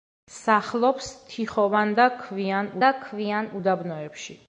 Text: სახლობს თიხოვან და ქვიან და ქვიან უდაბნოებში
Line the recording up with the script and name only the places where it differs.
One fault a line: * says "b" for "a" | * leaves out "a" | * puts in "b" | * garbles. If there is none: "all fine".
all fine